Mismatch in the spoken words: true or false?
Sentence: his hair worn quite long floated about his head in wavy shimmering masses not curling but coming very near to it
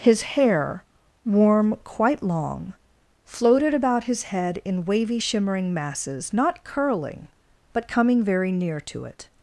true